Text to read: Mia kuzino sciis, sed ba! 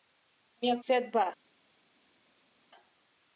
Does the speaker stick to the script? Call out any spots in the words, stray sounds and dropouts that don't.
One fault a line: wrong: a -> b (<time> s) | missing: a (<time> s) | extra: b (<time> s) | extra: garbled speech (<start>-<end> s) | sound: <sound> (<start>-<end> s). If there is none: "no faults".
missing: kuzino sciis (0.8 s)